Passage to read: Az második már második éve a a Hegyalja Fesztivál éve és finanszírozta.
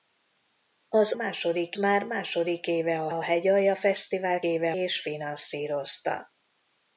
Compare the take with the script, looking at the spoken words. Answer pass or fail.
pass